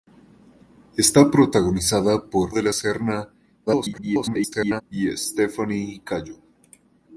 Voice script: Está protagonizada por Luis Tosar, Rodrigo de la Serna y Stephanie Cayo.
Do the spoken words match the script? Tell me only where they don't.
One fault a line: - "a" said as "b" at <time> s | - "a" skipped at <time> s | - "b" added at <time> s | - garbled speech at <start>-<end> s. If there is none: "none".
- "Luis Tosar Rodrigo" skipped at 2.5 s
- garbled speech at 3.7-4.8 s